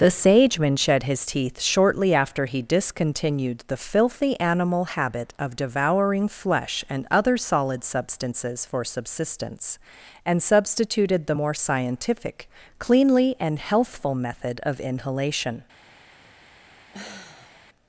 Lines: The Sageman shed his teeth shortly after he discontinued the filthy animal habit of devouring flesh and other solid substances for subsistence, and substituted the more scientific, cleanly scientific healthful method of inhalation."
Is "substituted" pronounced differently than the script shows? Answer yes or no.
no